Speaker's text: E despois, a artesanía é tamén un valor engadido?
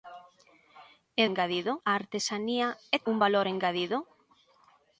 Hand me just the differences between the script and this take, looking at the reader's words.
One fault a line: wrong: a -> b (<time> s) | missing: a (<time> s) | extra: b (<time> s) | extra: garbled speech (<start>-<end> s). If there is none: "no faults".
wrong: despois -> engadido (1.3 s)
missing: tamén (3.0 s)